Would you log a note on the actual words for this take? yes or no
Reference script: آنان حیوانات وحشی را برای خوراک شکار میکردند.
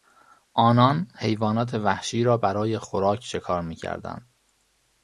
no